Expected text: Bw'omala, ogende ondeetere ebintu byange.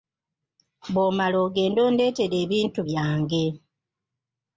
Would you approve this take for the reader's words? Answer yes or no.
yes